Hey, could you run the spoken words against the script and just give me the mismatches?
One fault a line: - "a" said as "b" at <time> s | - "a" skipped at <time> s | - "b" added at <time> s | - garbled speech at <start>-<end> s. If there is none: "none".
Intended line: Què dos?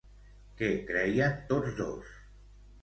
- "creien tots" added at 0.9 s